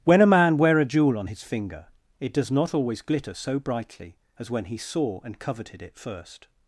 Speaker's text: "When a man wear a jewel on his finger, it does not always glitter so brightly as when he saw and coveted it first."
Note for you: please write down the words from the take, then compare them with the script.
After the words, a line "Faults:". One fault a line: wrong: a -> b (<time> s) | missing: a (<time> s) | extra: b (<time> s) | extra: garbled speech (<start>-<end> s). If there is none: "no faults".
"When a man wear a jewel on his finger, it does not always glitter so brightly as when he saw and coveted it first."
Faults:
no faults